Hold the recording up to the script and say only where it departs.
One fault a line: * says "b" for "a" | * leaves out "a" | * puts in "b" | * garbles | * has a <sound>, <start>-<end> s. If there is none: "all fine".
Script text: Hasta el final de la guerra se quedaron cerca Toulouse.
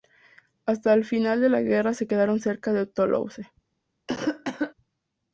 * puts in "de"
* has a cough, 4.1-4.7 s